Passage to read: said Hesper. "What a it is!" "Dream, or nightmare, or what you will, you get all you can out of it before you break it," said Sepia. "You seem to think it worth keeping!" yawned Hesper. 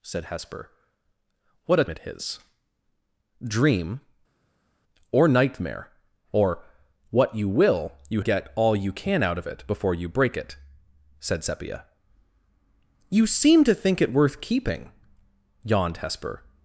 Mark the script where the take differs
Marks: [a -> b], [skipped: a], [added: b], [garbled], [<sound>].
said Hesper. "What a it is!" "Dream, or nightmare, or what you will, you get all you can out of it before you break it," said Sepia. "You seem to think it worth keeping!" yawned Hesper.